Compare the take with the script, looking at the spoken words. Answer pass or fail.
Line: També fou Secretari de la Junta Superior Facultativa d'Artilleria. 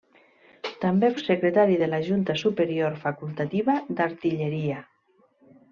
fail